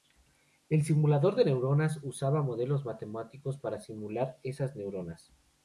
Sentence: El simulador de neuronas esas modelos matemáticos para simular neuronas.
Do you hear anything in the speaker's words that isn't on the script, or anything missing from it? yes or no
yes